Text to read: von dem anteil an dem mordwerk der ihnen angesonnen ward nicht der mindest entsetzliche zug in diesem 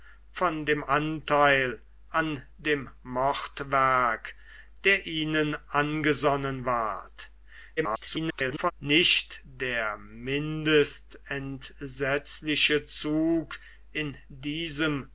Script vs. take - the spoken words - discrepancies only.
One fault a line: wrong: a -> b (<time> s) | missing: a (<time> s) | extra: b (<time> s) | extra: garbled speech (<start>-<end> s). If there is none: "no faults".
extra: garbled speech (7.8-8.7 s)